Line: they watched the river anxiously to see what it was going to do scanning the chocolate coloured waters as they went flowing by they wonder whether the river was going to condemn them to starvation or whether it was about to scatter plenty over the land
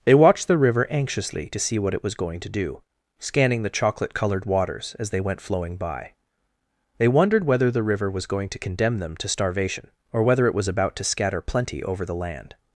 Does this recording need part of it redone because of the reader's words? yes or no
yes